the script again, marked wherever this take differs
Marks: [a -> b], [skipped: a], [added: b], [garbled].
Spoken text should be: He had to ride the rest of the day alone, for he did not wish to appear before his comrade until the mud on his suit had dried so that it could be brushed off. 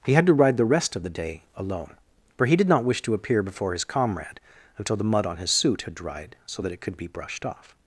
He had to ride the rest of the day alone, for he did not wish to appear before his comrade until the mud on his suit had dried so that it could be brushed off.